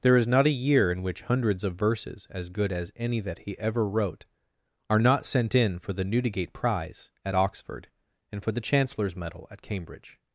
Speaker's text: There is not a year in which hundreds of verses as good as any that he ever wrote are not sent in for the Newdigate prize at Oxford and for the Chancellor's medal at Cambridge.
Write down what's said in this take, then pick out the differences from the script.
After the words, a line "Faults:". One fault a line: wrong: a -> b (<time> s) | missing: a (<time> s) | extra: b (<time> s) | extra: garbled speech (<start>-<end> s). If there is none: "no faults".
There is not a year in which hundreds of verses as good as any that he ever wrote are not sent in for the Newdigate prize at Oxford and for the Chancellor's medal at Cambridge.
Faults:
no faults